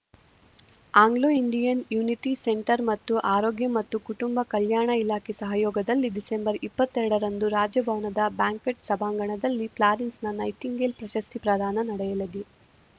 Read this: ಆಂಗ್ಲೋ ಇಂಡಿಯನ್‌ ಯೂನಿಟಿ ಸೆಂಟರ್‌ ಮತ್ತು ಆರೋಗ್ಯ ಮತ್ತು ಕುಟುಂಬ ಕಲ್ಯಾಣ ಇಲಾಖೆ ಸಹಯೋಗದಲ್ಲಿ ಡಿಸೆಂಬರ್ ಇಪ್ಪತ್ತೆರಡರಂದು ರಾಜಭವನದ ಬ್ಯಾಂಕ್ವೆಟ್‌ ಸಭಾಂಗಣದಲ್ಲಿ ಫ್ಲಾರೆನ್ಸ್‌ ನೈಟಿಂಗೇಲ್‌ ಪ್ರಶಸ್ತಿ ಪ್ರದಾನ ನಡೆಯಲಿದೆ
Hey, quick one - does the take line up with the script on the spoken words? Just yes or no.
yes